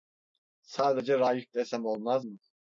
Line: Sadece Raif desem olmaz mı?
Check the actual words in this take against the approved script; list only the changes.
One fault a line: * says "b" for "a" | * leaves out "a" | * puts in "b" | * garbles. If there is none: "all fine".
all fine